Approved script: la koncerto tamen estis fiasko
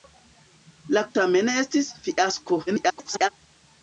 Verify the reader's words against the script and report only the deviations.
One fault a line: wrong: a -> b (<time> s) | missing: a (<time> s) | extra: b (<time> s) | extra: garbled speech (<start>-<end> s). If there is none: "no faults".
missing: koncerto (1.0 s)
extra: garbled speech (2.7-3.3 s)